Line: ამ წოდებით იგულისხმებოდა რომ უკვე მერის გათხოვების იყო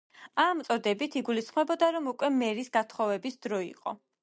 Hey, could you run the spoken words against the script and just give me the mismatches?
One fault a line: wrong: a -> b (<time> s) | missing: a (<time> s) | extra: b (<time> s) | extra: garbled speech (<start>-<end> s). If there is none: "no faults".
extra: დრო (3.5 s)